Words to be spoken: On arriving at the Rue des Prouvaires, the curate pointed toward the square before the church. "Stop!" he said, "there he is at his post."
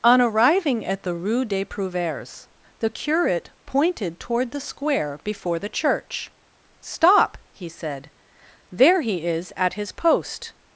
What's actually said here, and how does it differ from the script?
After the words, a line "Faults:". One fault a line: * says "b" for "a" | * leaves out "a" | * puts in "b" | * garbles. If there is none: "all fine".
On arriving at the Rue des Prouvaires, the curate pointed toward the square before the church. "Stop!" he said, "there he is at his post."
Faults:
all fine